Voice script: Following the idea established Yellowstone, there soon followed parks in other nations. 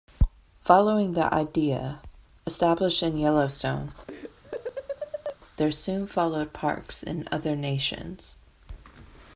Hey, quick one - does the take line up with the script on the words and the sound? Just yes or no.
no